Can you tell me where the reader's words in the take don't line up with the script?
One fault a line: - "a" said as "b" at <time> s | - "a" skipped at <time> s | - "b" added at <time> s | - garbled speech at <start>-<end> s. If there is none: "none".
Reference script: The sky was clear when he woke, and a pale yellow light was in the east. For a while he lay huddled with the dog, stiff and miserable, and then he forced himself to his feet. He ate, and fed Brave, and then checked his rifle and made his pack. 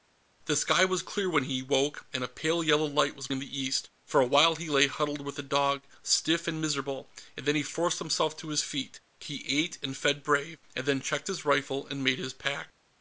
none